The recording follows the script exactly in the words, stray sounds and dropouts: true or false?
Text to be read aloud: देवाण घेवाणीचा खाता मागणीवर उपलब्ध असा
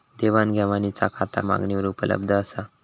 true